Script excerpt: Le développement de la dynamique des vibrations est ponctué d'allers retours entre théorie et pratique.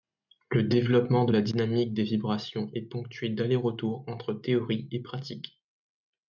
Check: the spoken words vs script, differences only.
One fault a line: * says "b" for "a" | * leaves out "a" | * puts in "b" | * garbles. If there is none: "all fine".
all fine